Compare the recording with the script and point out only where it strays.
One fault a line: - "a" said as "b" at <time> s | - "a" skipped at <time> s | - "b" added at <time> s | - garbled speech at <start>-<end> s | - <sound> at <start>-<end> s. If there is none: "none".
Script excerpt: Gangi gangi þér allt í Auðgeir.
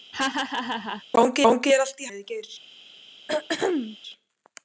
- laugh at 0.1-1.0 s
- throat clearing at 3.3-4.0 s